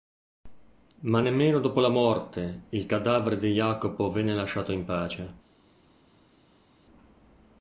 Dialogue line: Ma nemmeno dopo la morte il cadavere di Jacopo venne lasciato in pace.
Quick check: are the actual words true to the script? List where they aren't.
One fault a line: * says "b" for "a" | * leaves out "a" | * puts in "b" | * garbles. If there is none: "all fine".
all fine